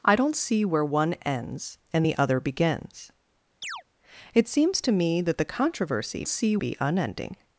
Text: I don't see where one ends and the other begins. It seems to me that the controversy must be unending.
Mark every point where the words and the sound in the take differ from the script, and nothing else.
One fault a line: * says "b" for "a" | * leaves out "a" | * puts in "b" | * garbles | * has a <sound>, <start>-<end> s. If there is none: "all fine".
* has a chirp, 3.6-3.8 s
* says "see" for "must"